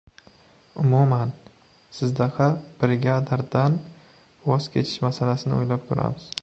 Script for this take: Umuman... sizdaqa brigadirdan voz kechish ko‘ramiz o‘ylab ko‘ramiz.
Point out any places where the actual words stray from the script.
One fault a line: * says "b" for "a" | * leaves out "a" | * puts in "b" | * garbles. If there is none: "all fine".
* says "masalasini" for "ko‘ramiz"